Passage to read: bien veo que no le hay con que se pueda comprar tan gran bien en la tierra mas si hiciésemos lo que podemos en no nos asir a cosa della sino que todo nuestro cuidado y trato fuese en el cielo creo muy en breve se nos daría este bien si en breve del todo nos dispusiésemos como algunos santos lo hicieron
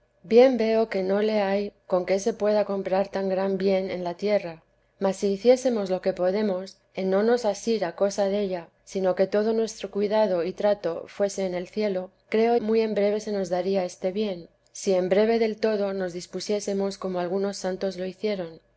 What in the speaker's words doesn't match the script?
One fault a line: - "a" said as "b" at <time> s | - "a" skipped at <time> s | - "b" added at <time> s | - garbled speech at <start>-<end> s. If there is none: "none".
none